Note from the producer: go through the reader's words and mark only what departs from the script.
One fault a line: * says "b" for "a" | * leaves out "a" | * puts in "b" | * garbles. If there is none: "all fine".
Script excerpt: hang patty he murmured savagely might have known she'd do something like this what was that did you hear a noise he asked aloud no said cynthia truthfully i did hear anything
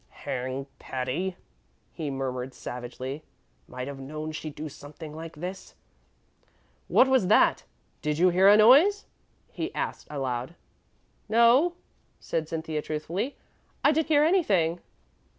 all fine